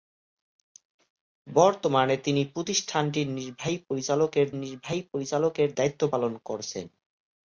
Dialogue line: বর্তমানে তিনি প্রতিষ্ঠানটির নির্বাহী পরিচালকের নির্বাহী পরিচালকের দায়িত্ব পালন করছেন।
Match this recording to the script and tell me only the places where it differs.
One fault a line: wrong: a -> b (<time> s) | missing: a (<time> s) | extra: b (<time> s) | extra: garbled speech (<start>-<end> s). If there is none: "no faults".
no faults